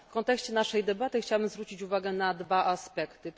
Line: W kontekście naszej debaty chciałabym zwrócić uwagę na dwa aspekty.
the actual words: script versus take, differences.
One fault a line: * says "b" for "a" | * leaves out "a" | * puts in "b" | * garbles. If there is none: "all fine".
all fine